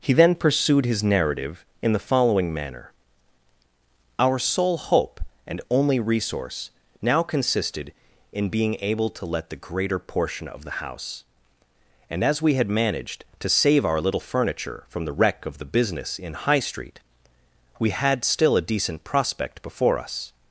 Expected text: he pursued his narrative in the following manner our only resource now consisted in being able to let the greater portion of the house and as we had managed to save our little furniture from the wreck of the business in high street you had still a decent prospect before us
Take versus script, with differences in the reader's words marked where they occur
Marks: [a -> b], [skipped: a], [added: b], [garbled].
he [added: then] pursued his narrative in the following manner our [added: sole hope and] only resource now consisted in being able to let the greater portion of the house and as we had managed to save our little furniture from the wreck of the business in high street [you -> we] had still a decent prospect before us